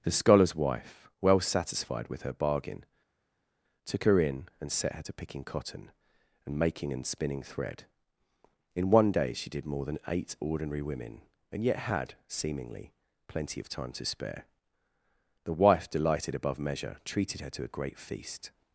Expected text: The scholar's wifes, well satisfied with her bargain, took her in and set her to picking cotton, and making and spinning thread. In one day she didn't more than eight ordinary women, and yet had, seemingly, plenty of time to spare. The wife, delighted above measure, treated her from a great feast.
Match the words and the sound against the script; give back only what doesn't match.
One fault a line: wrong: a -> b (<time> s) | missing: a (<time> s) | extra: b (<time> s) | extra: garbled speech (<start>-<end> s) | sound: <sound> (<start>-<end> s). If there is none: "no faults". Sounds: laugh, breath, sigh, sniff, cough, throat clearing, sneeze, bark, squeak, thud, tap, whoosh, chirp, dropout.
wrong: wifes -> wife (0.6 s)
wrong: didn't -> did (9.5 s)
wrong: from -> to (17.5 s)